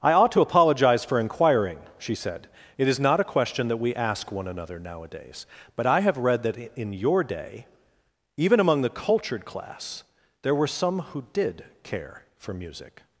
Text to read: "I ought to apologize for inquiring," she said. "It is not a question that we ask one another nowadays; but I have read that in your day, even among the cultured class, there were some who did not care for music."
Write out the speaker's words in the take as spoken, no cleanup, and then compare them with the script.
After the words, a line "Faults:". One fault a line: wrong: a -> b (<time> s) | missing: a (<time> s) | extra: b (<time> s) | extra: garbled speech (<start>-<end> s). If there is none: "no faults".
"I ought to apologize for inquiring," she said. "It is not a question that we ask one another nowadays; but I have read that in your day, even among the cultured class, there were some who did care for music."
Faults:
missing: not (11.7 s)